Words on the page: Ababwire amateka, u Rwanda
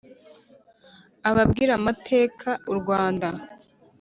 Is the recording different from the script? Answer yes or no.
no